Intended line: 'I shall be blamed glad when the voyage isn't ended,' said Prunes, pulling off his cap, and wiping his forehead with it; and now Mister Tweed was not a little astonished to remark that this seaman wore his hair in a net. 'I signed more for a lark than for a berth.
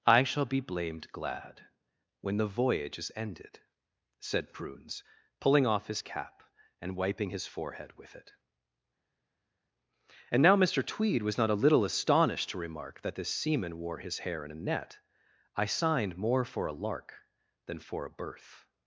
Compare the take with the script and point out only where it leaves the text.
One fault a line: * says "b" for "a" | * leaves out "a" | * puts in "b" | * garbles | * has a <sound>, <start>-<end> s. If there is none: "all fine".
* says "is" for "isn't"